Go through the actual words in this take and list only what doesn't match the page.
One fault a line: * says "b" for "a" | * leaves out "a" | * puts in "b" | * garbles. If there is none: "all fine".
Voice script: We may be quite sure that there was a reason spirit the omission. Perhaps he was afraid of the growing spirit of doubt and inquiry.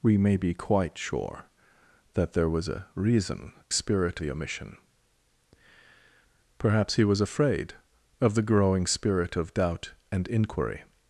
all fine